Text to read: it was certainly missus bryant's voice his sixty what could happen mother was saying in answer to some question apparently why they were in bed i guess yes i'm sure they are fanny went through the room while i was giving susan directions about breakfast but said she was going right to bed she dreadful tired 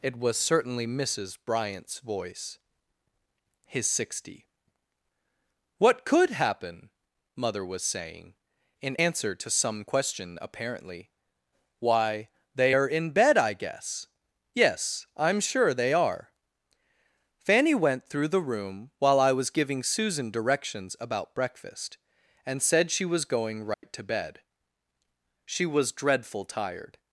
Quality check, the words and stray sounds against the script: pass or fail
fail